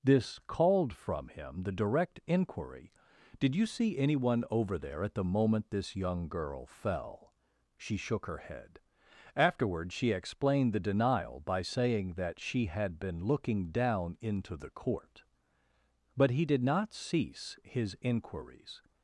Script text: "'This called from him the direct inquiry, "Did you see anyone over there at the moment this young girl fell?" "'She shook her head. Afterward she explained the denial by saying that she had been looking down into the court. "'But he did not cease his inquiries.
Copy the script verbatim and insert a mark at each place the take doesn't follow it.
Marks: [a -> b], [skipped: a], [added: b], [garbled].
"'This called from him the direct inquiry, "Did you see anyone over there at the moment this young girl fell?" "'She shook her head. Afterward she explained the denial by saying that she had been looking down into the court. "'But he did not cease his inquiries.